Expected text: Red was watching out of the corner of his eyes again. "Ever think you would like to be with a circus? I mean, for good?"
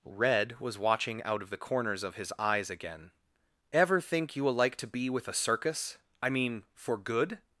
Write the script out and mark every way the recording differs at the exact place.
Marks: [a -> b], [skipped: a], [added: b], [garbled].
Red was watching out of the [corner -> corners] of his eyes again. "Ever think you [would -> will] like to be with a circus? I mean, for good?"